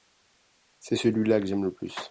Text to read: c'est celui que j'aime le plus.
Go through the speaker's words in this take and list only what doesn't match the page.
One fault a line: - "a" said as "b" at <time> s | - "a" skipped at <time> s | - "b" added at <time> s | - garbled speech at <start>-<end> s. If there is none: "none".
- "là" added at 1.3 s